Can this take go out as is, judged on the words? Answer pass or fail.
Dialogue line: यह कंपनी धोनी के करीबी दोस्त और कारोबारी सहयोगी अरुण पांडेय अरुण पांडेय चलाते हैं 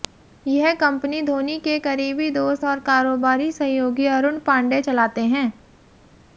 fail